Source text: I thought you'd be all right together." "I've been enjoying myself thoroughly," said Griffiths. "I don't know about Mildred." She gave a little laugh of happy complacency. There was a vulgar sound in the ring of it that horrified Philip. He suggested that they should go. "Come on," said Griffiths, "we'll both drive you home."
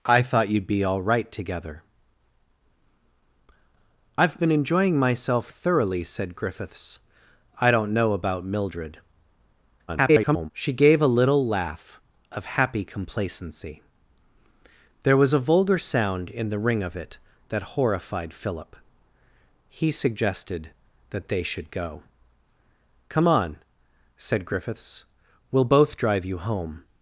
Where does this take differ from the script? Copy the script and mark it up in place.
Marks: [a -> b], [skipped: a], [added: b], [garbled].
I thought you'd be all right together." "I've been enjoying myself thoroughly," said Griffiths. "I don't know about Mildred." [garbled] She gave a little laugh of happy complacency. There was a vulgar sound in the ring of it that horrified Philip. He suggested that they should go. "Come on," said Griffiths, "we'll both drive you home."